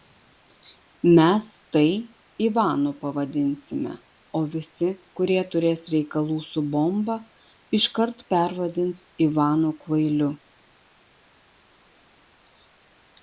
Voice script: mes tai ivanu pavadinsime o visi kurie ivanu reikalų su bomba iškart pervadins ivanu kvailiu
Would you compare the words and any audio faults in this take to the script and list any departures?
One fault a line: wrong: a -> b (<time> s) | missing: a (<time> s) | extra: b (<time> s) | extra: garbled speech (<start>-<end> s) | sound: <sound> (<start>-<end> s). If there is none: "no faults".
wrong: ivanu -> turės (5.6 s)